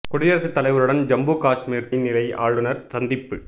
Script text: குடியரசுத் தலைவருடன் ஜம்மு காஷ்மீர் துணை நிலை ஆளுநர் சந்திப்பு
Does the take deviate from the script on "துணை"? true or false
true